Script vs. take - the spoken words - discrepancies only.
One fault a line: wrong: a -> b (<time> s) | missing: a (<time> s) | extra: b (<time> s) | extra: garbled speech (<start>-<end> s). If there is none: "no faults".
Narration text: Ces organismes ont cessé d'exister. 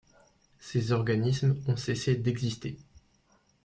no faults